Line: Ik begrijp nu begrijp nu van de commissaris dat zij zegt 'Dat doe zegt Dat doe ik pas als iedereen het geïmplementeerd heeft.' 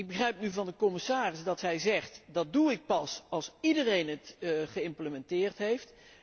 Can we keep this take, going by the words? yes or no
no